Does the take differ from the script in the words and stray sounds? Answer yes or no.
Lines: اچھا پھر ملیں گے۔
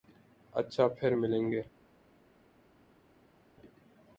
no